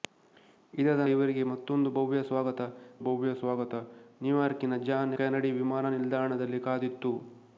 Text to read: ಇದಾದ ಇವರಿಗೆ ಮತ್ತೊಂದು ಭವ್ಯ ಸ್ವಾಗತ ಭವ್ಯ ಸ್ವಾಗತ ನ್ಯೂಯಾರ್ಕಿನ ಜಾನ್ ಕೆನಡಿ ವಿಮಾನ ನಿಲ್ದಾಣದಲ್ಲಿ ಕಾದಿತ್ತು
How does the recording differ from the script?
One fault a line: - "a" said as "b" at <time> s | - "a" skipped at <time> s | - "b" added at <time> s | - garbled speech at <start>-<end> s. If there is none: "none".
none